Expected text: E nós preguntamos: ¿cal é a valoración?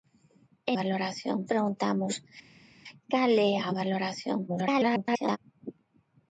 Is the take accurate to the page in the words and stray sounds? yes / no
no